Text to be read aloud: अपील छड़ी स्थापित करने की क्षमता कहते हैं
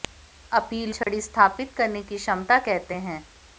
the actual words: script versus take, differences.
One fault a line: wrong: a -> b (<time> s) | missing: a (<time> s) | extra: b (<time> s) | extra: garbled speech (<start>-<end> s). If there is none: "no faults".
no faults